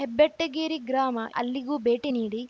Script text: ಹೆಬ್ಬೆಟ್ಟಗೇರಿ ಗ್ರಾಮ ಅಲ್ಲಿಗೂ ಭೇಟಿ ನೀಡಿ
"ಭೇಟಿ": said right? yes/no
yes